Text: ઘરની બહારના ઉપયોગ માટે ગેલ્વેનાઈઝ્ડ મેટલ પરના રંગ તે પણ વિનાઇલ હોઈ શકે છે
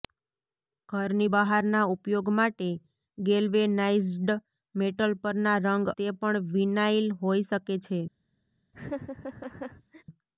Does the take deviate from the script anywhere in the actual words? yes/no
no